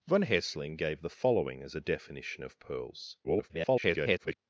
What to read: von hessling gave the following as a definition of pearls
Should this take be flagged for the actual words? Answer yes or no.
yes